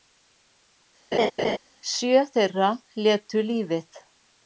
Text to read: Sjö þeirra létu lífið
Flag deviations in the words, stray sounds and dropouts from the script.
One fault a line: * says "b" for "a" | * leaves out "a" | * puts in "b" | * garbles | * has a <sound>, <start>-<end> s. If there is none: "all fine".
* has a laugh, 1.1-1.6 s